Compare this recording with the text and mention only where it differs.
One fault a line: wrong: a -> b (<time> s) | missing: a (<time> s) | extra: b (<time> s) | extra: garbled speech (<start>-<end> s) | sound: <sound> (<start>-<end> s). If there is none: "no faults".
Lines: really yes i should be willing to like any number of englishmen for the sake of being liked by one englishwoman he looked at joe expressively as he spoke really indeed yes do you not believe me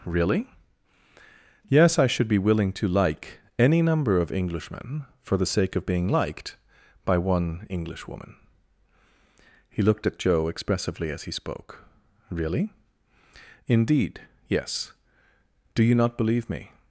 no faults